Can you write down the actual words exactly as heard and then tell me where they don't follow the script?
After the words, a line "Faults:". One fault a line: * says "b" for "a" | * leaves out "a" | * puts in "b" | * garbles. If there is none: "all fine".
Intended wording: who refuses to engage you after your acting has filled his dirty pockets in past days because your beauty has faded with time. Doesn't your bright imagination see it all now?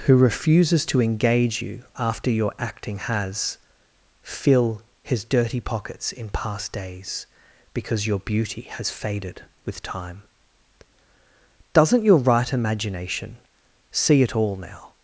who refuses to engage you after your acting has fill his dirty pockets in past days because your beauty has faded with time. Doesn't your right imagination see it all now?
Faults:
* says "fill" for "filled"
* says "right" for "bright"